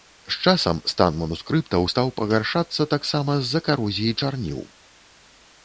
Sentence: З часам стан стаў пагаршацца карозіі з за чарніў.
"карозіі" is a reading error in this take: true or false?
true